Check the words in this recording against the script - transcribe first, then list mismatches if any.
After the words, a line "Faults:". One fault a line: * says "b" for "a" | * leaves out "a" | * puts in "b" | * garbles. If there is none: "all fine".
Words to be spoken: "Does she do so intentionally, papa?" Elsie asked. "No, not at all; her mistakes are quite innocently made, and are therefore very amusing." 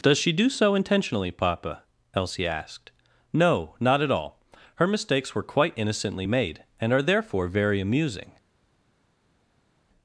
"Does she do so intentionally, papa?" Elsie asked. "No, not at all; her mistakes were quite innocently made, and are therefore very amusing."
Faults:
* says "were" for "are"